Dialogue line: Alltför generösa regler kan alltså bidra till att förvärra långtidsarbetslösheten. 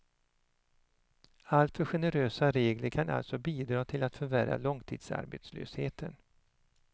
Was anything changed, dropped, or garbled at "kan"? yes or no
no